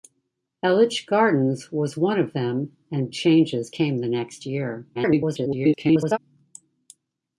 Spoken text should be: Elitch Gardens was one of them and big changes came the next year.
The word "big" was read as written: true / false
false